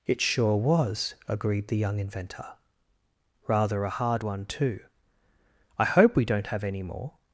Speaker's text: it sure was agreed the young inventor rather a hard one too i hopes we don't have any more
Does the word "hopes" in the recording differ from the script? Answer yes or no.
yes